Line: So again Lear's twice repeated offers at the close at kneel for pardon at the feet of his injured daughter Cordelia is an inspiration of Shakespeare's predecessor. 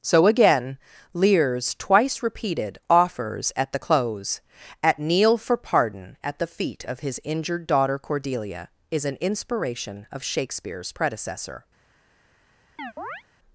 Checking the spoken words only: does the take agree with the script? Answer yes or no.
yes